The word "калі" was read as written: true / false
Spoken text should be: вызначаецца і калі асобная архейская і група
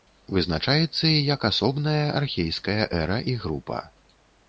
false